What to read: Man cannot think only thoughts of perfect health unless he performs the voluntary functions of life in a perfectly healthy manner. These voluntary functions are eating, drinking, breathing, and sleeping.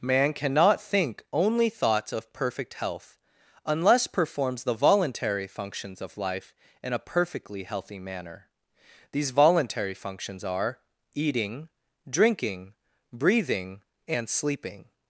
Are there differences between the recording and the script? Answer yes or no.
yes